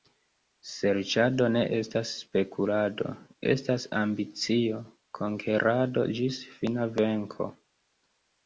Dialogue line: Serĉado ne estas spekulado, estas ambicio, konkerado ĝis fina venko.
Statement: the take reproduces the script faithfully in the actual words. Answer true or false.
true